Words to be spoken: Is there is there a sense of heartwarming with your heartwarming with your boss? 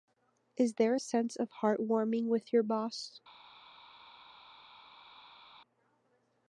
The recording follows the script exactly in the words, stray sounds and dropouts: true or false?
false